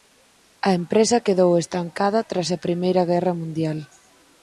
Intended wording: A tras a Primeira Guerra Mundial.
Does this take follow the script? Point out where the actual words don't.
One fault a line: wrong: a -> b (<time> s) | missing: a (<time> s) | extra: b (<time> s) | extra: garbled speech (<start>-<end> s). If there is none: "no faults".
extra: empresa quedou estancada (0.8 s)